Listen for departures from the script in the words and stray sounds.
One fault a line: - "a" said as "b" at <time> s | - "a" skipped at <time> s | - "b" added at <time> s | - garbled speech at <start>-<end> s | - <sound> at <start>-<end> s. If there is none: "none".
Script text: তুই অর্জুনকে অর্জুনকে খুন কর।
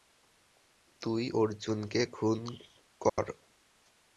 - "অর্জুনকে" skipped at 2.0 s
- dropout at 3.1-3.2 s